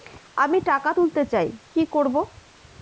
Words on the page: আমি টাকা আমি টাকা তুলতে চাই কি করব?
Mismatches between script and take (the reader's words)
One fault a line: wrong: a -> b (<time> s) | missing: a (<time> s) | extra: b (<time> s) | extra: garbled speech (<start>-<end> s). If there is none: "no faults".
missing: আমি টাকা (0.9 s)